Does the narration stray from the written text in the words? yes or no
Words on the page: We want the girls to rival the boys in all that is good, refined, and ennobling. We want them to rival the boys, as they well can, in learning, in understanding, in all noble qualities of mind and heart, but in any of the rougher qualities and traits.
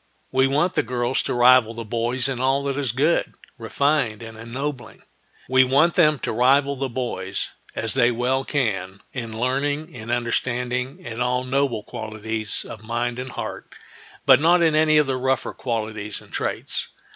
yes